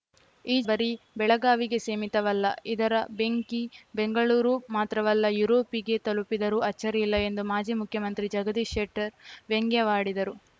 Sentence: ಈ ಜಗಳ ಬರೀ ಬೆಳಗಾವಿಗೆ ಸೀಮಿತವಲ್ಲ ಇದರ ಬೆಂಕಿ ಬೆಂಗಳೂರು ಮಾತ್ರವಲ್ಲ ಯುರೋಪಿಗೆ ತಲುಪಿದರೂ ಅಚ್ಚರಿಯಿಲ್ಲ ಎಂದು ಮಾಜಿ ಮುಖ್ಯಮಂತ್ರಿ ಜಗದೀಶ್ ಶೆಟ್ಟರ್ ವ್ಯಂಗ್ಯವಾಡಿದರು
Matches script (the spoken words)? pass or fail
fail